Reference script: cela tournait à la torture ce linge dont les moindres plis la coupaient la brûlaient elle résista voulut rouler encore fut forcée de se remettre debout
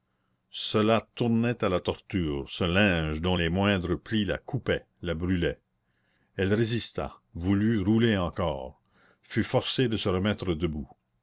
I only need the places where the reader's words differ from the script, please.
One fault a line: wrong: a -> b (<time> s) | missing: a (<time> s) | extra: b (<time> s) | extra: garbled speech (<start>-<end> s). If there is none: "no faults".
no faults